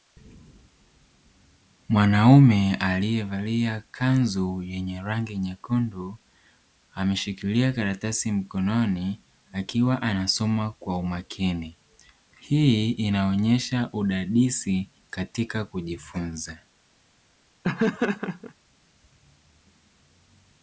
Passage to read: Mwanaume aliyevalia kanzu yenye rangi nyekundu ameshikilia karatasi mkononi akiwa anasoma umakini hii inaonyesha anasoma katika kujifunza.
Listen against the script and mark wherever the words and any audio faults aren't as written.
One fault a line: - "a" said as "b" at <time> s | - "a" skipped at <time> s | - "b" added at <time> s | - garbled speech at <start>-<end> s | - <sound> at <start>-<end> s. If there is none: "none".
- "kwa" added at 10.7 s
- "anasoma" said as "udadisi" at 13.9 s
- laugh at 17.6-18.5 s